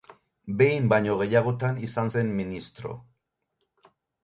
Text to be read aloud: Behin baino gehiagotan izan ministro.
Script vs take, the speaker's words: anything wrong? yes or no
yes